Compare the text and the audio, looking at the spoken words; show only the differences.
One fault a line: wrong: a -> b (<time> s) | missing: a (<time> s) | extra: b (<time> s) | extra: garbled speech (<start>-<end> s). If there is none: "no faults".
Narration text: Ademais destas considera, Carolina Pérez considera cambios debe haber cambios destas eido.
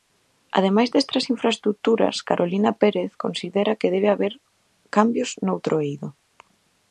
wrong: considera -> infraestruturas (1.3 s)
wrong: cambios -> que (3.8 s)
wrong: destas -> noutro (5.5 s)